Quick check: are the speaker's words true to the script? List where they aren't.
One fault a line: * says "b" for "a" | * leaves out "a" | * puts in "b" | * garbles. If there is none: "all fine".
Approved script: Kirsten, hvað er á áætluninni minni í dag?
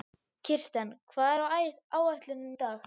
* leaves out "minni"